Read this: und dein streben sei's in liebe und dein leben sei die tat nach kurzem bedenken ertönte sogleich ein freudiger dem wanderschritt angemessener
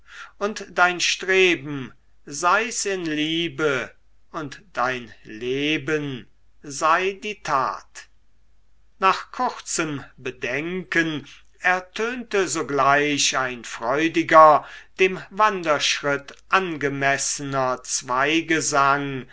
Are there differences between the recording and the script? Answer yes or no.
no